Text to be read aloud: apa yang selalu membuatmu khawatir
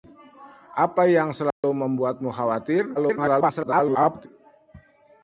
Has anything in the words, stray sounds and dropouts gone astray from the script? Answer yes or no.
yes